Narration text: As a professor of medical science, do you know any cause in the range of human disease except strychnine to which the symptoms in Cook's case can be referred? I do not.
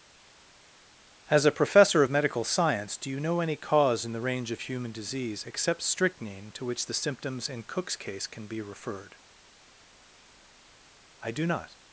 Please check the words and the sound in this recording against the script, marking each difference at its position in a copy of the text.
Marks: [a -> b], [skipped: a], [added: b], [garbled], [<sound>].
As a professor of medical science, do you know any cause in the range of human disease except strychnine to which the symptoms in Cook's case can be referred? I do not.